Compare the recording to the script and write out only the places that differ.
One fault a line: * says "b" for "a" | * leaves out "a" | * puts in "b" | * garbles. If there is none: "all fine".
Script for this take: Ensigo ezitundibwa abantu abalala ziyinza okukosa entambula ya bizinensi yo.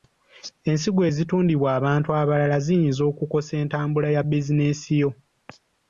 all fine